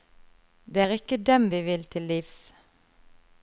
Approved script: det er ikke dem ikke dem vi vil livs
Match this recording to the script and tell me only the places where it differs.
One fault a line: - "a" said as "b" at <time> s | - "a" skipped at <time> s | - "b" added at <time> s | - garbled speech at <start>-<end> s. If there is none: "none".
- "ikke dem" skipped at 1.5 s
- "til" added at 1.8 s